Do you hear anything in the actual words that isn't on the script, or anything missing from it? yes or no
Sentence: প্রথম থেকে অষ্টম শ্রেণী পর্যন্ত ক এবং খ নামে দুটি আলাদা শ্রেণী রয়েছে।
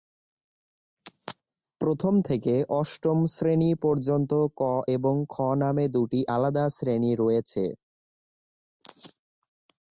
no